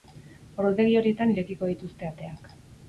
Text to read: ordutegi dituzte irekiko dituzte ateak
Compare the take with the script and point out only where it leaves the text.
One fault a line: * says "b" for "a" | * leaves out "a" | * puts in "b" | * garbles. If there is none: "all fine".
* says "horietan" for "dituzte"